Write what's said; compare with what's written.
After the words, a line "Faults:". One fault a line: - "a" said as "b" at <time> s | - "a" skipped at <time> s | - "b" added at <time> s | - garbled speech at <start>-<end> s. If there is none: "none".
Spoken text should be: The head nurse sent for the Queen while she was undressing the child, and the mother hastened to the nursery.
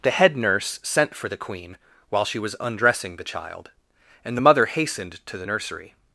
The head nurse sent for the Queen while she was undressing the child, and the mother hastened to the nursery.
Faults:
none